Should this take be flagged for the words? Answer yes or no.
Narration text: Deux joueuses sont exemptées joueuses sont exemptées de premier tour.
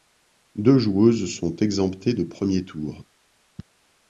yes